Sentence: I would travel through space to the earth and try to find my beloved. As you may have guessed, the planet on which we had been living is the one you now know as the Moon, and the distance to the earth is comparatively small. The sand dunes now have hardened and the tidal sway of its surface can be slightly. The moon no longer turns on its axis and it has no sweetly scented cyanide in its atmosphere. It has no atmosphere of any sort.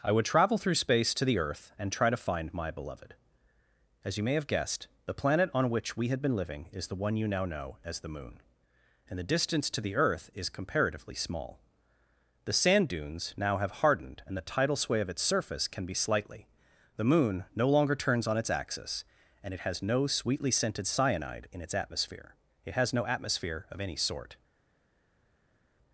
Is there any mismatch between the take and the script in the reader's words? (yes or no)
no